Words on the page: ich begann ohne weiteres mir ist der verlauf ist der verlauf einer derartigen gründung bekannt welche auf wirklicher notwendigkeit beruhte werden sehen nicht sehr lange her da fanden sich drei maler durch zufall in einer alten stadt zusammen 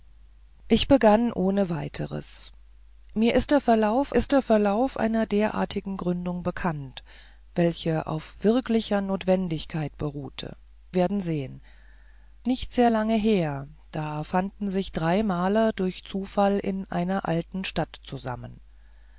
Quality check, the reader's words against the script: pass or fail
pass